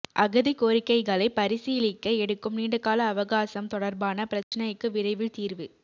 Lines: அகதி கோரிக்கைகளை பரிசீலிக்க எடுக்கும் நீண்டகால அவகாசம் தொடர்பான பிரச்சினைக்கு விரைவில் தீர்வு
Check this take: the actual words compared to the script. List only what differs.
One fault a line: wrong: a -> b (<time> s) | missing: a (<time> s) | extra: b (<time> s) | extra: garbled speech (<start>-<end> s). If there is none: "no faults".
no faults